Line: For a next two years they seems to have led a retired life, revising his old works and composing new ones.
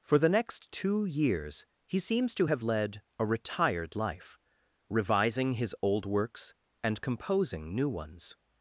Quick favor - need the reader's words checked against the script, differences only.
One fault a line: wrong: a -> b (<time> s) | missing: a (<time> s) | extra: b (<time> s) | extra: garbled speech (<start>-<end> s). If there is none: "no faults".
wrong: a -> the (0.2 s)
wrong: they -> he (1.9 s)